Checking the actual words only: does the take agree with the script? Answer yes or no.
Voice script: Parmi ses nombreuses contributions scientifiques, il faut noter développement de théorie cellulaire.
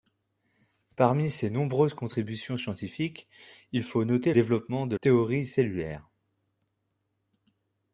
yes